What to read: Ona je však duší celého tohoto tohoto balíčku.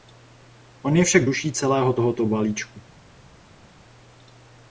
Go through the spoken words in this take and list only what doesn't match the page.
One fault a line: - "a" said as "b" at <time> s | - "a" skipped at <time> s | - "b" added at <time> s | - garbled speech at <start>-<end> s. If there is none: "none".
- "Ona" said as "On" at 0.8 s
- "tohoto" skipped at 2.3 s